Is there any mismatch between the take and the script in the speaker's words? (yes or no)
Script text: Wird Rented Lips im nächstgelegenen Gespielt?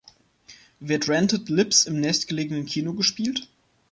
yes